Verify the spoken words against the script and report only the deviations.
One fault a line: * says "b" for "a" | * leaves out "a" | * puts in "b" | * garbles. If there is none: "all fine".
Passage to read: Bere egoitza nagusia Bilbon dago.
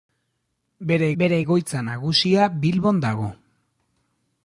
* puts in "bere"